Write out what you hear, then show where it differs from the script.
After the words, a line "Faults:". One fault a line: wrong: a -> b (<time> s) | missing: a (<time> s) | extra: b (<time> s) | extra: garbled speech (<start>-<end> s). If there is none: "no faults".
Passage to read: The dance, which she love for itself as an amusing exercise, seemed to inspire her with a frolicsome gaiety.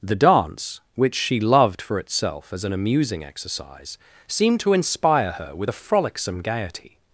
The dance, which she loved for itself as an amusing exercise, seemed to inspire her with a frolicsome gaiety.
Faults:
wrong: love -> loved (1.4 s)